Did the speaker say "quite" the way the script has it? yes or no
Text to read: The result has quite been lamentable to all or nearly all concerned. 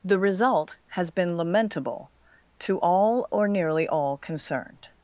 no